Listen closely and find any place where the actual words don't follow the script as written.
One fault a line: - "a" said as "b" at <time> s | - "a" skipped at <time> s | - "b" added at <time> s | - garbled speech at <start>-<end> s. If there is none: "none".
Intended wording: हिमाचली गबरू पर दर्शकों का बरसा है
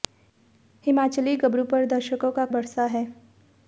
none